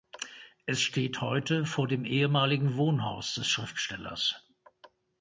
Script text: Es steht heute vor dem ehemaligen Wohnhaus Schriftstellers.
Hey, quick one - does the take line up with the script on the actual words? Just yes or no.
no